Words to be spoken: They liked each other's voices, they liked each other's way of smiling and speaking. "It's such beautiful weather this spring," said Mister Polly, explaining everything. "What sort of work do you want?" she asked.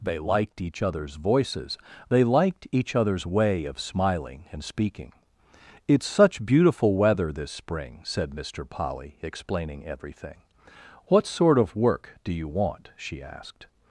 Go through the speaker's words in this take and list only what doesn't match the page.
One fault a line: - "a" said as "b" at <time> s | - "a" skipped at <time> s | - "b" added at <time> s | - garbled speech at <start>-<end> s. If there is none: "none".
none